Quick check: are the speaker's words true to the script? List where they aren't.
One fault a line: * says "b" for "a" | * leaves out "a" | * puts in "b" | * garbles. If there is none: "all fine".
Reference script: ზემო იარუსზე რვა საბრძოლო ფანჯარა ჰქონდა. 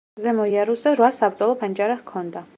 all fine